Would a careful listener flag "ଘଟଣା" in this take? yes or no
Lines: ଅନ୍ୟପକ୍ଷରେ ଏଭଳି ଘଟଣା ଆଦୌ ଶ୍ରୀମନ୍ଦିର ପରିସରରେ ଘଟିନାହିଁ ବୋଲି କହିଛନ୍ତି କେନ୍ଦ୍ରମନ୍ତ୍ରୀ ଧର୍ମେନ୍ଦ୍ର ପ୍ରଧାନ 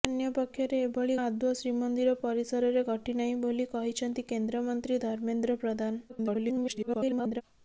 yes